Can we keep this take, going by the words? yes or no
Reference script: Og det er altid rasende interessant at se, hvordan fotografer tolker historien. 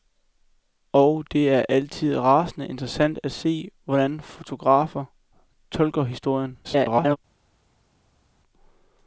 no